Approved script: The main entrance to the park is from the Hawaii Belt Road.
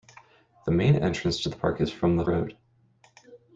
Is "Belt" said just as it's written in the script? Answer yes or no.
no